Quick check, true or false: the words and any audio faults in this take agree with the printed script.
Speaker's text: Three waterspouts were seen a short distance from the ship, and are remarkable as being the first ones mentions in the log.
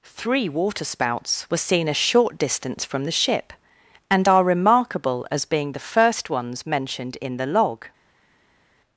false